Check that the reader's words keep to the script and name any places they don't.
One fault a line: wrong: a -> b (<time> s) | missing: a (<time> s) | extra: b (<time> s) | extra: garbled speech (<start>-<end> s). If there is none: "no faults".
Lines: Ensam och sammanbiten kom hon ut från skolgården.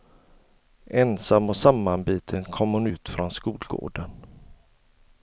no faults